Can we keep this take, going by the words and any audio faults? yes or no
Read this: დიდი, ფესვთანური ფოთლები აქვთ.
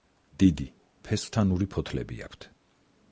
yes